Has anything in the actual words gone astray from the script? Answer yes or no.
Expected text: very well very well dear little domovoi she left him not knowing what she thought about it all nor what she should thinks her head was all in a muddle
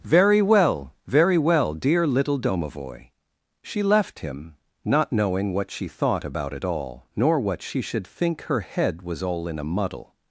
yes